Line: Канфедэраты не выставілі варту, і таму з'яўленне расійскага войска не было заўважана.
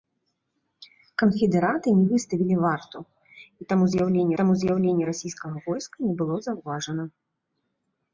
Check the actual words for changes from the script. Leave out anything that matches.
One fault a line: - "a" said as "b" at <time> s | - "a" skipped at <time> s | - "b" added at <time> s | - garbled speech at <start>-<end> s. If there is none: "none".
- "таму з'яўленне" added at 4.4 s